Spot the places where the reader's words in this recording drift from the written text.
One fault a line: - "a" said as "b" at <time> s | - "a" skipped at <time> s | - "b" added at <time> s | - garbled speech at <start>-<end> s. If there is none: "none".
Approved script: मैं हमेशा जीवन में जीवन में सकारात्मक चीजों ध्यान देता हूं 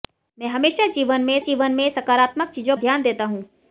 none